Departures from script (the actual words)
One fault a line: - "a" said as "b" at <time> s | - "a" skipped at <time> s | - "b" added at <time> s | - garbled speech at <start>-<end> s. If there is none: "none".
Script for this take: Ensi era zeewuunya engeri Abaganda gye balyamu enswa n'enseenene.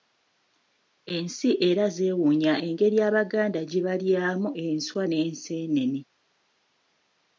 none